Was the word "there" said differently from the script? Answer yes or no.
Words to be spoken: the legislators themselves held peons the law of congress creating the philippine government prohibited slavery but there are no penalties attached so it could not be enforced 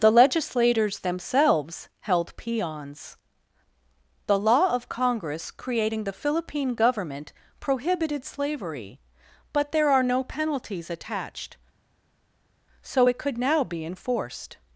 no